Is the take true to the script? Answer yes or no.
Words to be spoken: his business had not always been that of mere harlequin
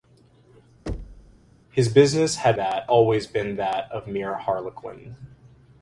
no